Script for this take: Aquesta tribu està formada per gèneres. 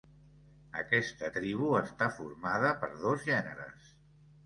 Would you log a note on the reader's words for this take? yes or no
yes